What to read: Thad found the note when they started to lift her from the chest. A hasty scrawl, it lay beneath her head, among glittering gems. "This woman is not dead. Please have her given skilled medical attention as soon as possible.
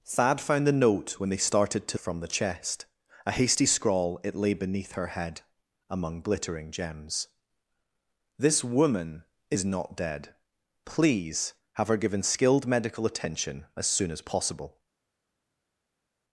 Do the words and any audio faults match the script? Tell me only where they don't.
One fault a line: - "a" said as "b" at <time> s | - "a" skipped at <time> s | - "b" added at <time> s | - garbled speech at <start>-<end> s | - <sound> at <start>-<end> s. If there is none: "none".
- "lift her" skipped at 2.0 s